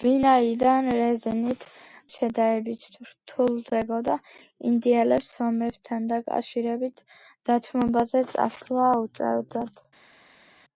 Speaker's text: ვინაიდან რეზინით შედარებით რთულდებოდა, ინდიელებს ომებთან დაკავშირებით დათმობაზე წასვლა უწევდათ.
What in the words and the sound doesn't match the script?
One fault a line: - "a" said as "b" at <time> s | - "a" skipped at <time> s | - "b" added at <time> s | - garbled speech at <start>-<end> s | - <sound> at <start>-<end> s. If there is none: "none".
none